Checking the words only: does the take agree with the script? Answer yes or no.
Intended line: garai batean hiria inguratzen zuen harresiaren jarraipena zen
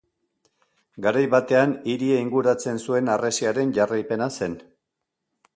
yes